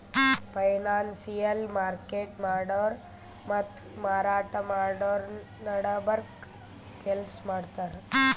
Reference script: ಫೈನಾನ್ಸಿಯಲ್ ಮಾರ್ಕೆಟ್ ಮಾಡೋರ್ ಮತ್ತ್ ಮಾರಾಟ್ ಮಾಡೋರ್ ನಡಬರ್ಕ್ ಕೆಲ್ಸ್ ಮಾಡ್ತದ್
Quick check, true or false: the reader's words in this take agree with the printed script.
true